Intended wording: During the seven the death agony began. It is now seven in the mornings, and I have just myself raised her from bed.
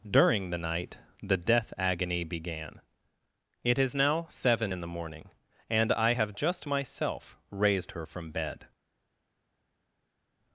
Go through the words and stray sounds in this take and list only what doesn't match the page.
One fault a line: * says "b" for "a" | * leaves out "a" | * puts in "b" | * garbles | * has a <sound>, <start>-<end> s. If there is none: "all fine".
* says "night" for "seven"
* says "morning" for "mornings"